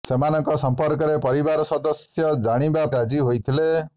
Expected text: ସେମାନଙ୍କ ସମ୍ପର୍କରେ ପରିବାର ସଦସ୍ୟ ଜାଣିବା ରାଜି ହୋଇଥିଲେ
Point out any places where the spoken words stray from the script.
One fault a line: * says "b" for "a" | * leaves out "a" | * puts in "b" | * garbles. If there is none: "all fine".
all fine